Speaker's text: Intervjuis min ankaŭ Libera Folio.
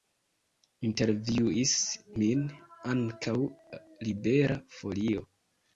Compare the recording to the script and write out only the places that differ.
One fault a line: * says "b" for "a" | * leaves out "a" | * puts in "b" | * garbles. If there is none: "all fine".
all fine